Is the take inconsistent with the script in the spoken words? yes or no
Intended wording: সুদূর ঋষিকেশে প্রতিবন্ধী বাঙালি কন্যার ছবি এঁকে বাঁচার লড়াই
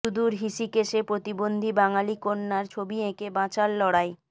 no